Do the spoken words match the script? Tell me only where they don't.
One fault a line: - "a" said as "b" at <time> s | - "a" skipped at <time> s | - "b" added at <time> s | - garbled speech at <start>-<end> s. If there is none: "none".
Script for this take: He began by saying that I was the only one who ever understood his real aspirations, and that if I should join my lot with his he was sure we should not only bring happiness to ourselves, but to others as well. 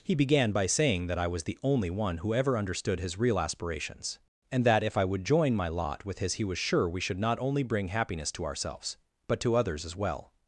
- "should" said as "would" at 5.0 s